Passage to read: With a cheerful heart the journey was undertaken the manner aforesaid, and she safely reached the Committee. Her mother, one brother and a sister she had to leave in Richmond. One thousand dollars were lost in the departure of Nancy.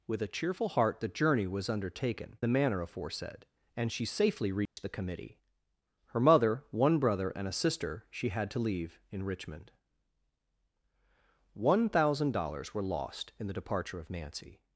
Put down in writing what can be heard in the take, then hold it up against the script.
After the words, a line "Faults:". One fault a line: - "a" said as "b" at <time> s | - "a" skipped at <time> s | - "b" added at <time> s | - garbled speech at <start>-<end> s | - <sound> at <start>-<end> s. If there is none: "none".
With a cheerful heart the journey was undertaken the manner aforesaid, and she safely reached the Committee. Her mother, one brother and a sister she had to leave in Richmond. One thousand dollars were lost in the departure of Nancy.
Faults:
- dropout at 4.7-4.8 s